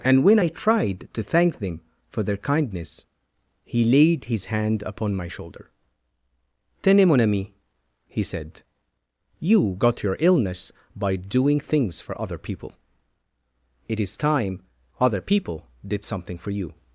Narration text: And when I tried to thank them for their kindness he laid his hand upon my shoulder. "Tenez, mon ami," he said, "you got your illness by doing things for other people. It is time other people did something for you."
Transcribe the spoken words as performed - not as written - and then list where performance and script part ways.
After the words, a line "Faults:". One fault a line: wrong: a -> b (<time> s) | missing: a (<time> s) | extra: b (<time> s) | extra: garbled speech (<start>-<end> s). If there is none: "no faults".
And when I tried to thank them for their kindness he laid his hand upon my shoulder. "Tenez, mon ami," he said, "you got your illness by doing things for other people. It is time other people did something for you."
Faults:
no faults